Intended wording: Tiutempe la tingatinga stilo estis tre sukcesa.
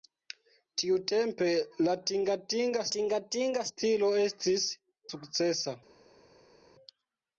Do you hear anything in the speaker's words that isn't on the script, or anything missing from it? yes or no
yes